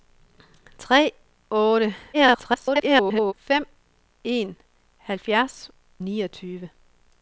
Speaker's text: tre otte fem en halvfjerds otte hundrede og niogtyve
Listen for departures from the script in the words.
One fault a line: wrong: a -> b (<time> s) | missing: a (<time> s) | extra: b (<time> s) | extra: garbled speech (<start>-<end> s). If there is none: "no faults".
extra: garbled speech (2.1-3.3 s)
missing: otte hundrede og (5.7 s)